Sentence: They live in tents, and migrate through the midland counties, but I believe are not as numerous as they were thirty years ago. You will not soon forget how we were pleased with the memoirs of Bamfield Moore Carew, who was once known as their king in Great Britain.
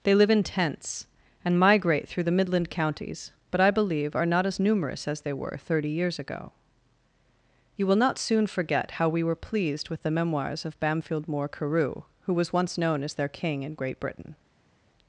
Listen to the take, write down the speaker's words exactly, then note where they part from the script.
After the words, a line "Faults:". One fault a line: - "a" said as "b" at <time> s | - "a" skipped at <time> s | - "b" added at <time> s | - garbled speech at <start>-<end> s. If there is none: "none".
They live in tents, and migrate through the midland counties, but I believe are not as numerous as they were thirty years ago. You will not soon forget how we were pleased with the memoirs of Bamfield Moore Carew, who was once known as their king in Great Britain.
Faults:
none